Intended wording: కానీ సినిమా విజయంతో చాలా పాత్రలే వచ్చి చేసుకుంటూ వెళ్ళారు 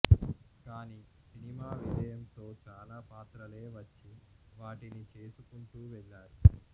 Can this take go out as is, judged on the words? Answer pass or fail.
fail